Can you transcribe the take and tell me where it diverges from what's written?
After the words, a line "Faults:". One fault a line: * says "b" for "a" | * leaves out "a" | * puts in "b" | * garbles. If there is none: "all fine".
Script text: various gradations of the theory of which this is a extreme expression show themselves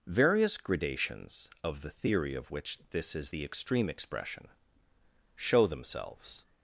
various gradations of the theory of which this is the extreme expression show themselves
Faults:
* says "the" for "a"